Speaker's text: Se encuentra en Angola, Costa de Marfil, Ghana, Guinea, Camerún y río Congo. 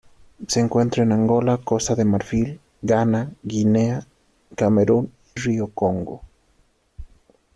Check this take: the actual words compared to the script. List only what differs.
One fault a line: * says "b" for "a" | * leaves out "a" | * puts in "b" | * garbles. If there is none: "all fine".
* leaves out "y"